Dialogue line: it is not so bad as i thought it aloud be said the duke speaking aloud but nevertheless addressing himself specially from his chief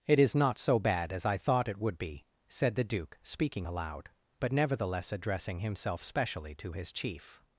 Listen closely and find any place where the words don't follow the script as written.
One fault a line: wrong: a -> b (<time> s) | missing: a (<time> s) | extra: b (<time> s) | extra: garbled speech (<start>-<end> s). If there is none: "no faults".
wrong: aloud -> would (1.8 s)
wrong: from -> to (6.6 s)